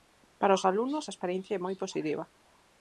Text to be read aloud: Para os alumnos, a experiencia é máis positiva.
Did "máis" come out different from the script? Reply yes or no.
yes